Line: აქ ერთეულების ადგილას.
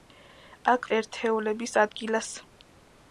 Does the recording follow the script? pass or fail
pass